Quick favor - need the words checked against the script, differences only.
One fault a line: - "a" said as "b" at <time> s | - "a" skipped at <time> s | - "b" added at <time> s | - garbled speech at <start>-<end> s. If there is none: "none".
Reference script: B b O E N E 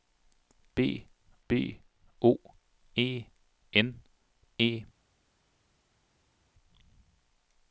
none